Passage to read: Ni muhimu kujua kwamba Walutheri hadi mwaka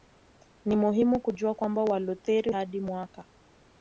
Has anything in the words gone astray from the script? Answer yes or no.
no